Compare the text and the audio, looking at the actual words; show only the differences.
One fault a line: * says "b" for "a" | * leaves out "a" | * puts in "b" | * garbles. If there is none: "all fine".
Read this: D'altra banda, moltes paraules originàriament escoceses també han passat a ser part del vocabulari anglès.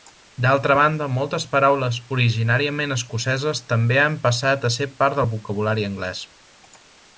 all fine